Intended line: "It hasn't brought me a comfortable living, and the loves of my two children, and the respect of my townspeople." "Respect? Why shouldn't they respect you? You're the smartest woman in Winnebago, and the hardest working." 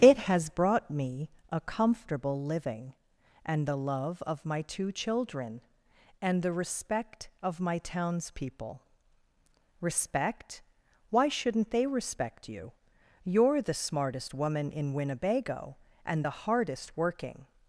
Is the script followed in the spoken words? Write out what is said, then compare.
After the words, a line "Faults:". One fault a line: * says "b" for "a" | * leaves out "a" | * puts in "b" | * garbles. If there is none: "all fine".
"It has brought me a comfortable living, and the love of my two children, and the respect of my townspeople." "Respect? Why shouldn't they respect you? You're the smartest woman in Winnebago, and the hardest working."
Faults:
* says "has" for "hasn't"
* says "love" for "loves"